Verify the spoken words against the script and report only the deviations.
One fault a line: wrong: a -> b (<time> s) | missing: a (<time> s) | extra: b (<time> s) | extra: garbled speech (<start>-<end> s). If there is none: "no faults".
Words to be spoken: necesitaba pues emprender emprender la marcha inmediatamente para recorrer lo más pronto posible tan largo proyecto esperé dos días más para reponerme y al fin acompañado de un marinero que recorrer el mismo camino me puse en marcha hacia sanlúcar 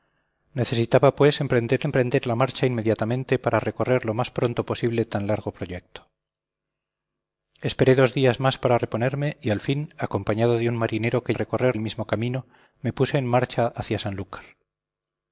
no faults